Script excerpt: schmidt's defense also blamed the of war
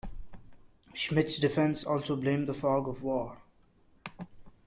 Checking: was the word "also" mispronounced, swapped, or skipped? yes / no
no